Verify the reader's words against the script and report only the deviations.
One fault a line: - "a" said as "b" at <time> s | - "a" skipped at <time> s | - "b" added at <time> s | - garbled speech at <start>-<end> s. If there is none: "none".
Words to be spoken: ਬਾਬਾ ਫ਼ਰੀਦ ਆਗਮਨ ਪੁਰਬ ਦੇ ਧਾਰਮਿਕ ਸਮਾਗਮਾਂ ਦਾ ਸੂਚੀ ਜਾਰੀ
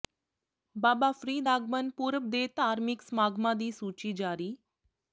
- "ਦਾ" said as "ਦੀ" at 3.6 s